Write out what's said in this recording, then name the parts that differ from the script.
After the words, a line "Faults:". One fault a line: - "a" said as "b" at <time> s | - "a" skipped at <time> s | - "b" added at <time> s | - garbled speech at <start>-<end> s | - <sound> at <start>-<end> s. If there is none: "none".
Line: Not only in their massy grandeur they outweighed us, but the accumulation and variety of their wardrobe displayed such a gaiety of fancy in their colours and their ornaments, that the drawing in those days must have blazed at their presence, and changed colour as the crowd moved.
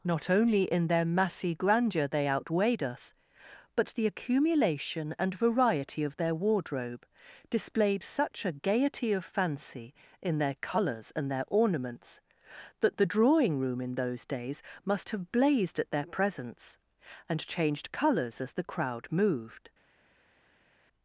Not only in their massy grandeur they outweighed us, but the accumulation and variety of their wardrobe displayed such a gaiety of fancy in their colours and their ornaments, that the drawing room in those days must have blazed at their presence, and changed colours as the crowd moved.
Faults:
- "room" added at 13.6 s
- "colour" said as "colours" at 17.9 s